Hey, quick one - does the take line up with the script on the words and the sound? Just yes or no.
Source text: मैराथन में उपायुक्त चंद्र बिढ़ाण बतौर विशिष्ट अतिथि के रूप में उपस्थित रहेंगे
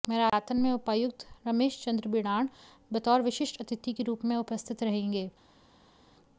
no